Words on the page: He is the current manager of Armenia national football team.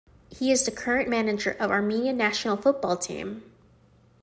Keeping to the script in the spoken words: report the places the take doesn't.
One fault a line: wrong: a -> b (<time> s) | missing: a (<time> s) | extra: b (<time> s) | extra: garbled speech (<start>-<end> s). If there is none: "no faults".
no faults